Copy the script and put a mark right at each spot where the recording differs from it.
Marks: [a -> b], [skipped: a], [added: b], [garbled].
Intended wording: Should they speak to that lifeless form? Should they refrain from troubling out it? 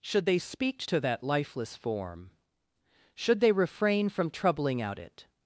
Should they speak to that lifeless form? Should they refrain from troubling out it?